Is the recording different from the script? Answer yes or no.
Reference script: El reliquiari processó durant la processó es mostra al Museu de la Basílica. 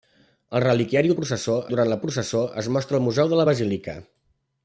no